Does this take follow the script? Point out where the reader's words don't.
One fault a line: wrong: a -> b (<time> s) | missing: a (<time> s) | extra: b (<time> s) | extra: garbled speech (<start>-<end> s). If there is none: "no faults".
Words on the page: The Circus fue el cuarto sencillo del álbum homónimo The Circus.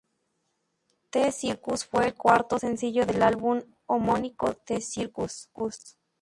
no faults